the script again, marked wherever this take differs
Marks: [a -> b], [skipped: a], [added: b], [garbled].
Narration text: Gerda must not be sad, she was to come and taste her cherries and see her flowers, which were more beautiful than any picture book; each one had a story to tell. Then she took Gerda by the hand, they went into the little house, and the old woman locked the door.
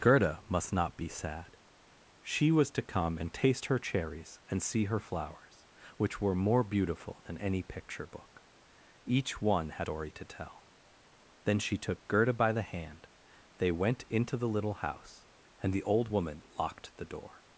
Gerda must not be sad, she was to come and taste her cherries and see her flowers, which were more beautiful than any picture book; each one had [skipped: a] story to tell. Then she took Gerda by the hand, they went into the little house, and the old woman locked the door.